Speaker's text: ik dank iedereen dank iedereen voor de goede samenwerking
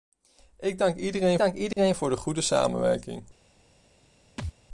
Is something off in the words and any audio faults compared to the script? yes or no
yes